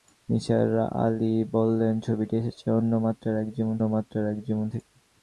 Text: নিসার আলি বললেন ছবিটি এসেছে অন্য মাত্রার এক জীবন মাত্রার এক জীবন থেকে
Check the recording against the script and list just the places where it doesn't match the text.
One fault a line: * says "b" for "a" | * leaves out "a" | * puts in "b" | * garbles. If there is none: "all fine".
all fine